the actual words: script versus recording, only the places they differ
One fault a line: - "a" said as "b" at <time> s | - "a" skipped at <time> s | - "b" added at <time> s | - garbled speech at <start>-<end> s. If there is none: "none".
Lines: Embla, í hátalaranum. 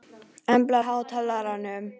none